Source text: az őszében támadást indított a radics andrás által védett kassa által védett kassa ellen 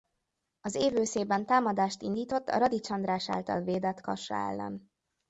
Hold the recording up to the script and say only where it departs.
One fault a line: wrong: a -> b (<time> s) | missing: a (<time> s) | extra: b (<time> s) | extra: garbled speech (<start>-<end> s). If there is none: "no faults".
extra: év (0.8 s)
missing: által védett kassa (4.3 s)